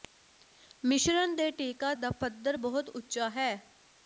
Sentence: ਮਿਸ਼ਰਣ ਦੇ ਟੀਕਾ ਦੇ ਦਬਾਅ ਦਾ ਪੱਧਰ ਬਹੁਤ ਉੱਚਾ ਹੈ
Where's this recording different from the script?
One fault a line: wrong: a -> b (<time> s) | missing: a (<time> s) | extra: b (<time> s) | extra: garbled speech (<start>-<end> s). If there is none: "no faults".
missing: ਦੇ ਦਬਾਅ (1.9 s)